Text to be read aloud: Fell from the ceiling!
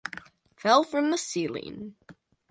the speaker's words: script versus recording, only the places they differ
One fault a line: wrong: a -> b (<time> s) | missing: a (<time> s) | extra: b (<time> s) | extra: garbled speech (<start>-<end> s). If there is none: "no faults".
no faults